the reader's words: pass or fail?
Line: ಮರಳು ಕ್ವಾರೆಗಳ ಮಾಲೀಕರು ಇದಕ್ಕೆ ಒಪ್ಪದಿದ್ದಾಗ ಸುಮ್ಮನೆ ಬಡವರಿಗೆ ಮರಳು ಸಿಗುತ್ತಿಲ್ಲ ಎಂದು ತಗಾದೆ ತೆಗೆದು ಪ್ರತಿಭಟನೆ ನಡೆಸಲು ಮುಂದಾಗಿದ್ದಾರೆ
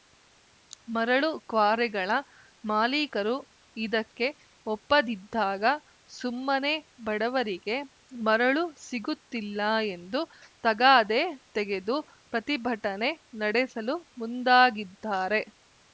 pass